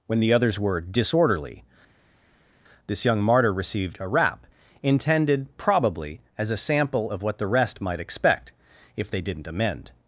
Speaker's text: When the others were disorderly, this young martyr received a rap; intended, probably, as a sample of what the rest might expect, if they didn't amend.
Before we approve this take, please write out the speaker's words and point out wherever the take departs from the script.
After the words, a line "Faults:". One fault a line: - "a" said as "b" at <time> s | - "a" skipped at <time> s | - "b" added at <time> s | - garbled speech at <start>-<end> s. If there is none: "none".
When the others were disorderly, this young martyr received a rap; intended, probably, as a sample of what the rest might expect, if they didn't amend.
Faults:
none